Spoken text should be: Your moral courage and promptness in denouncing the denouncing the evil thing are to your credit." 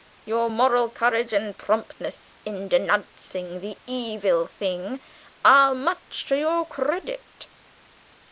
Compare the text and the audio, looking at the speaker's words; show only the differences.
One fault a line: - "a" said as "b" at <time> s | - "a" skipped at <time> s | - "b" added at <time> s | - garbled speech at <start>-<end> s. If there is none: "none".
- "denouncing the" skipped at 3.8 s
- "much" added at 5.7 s